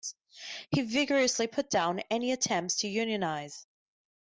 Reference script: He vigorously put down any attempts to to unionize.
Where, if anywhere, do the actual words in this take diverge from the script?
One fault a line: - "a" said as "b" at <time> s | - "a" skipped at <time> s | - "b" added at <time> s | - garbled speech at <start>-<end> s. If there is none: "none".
- "to" skipped at 2.9 s